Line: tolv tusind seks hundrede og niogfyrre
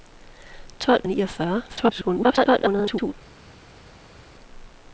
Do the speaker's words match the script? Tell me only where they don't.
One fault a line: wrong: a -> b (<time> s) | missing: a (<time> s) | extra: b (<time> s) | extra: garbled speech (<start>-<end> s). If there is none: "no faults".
missing: tusind seks hundrede (1.0 s)
extra: garbled speech (1.7-3.1 s)